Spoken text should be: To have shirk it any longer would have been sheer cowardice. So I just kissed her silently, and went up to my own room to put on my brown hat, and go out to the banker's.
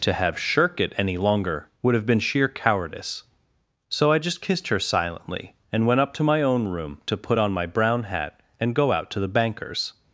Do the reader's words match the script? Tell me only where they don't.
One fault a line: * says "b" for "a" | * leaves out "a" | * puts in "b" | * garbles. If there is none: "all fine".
all fine